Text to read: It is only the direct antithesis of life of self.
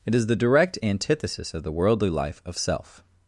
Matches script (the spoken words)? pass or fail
fail